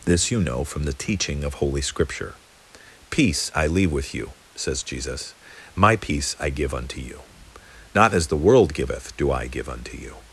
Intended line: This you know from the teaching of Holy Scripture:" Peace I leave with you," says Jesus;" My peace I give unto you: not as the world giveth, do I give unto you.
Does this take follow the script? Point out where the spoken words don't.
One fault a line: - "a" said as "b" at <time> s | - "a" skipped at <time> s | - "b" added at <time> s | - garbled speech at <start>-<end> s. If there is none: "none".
none